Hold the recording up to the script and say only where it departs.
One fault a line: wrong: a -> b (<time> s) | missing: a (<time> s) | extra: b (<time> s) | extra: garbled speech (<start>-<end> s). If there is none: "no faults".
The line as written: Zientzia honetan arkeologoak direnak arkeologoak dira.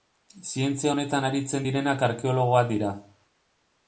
wrong: arkeologoak -> aritzen (1.3 s)